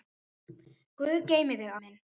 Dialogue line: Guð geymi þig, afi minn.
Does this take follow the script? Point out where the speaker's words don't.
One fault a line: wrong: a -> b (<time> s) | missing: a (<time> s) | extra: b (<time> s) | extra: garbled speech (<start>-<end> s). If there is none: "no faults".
missing: afi (1.7 s)